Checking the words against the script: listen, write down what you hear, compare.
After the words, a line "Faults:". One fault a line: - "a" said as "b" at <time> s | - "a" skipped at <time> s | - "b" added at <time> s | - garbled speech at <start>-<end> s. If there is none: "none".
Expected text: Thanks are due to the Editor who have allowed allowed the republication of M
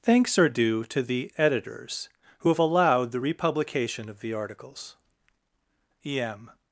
Thanks are due to the Editors who have allowed the republication of the articles. E M
Faults:
- "Editor" said as "Editors" at 1.4 s
- "allowed" skipped at 3.1 s
- "the articles E" added at 4.2 s